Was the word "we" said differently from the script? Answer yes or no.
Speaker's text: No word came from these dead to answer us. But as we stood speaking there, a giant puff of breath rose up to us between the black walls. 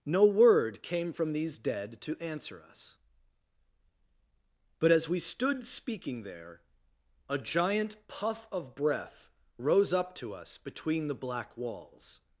no